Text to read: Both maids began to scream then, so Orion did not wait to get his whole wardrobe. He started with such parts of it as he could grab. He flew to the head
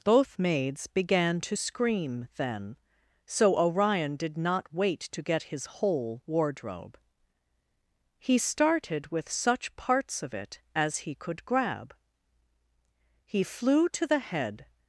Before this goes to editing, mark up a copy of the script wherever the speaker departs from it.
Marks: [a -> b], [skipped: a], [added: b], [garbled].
Both maids began to scream then, so Orion did not wait to get his whole wardrobe. He started with such parts of it as he could grab. He flew to the head